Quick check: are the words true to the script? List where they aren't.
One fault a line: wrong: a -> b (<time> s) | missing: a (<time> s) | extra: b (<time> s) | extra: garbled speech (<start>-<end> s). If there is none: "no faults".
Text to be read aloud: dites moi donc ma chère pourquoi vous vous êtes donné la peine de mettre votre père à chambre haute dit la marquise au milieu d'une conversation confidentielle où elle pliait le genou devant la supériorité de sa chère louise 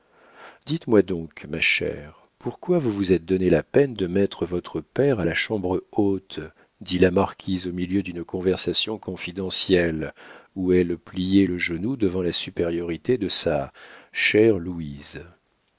extra: la (5.2 s)